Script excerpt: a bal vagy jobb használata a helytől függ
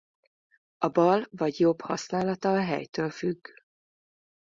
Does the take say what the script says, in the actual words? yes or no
yes